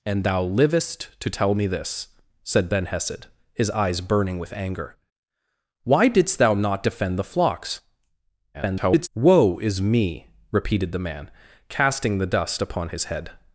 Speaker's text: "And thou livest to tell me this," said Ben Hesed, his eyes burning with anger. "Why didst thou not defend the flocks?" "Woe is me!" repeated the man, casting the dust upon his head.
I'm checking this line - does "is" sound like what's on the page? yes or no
yes